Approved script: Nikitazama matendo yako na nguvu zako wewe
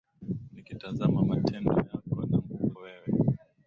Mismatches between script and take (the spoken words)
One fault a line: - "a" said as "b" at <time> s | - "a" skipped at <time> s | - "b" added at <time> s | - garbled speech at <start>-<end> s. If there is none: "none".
- "zako" skipped at 2.7 s